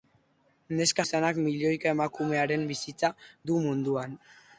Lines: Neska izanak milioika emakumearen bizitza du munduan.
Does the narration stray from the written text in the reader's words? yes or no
no